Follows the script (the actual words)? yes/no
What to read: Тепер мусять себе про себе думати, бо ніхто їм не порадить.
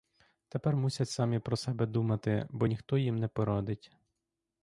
no